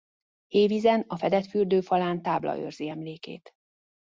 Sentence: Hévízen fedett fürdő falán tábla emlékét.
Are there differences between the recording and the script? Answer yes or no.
yes